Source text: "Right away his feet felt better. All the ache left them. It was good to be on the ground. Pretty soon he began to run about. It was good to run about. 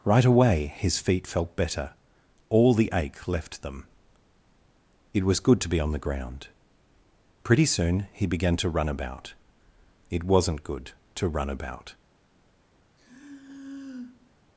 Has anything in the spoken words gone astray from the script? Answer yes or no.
yes